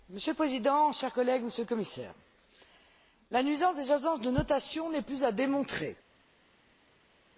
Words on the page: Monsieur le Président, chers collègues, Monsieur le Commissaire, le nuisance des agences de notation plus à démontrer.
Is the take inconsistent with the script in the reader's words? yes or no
yes